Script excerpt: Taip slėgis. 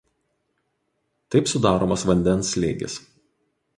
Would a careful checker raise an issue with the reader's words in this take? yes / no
yes